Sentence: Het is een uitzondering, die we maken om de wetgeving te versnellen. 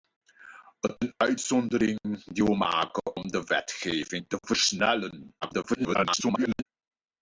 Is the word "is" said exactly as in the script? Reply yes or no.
no